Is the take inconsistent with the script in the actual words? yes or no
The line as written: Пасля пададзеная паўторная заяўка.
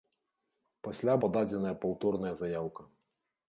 no